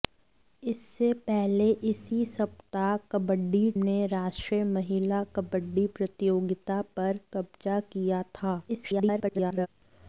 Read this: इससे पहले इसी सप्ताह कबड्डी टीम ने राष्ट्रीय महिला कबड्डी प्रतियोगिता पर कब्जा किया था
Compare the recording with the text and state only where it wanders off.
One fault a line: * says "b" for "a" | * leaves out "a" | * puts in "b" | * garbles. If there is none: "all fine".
* leaves out "टीम"
* garbles